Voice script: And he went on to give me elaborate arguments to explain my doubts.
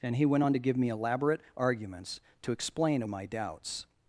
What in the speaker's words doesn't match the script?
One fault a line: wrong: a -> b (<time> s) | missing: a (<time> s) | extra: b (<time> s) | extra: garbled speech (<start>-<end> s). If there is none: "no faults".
no faults